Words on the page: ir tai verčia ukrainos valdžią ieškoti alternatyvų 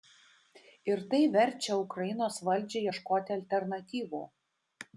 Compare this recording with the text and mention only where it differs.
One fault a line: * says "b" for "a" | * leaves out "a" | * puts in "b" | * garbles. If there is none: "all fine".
all fine